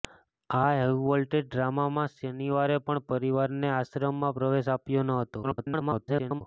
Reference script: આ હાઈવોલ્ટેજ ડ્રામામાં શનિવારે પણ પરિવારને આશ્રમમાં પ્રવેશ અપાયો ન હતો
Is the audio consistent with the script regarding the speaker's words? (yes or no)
no